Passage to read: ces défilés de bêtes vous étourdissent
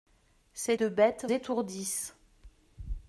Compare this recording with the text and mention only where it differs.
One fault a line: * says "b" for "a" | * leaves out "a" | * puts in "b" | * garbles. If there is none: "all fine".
* leaves out "défilés"
* leaves out "vous"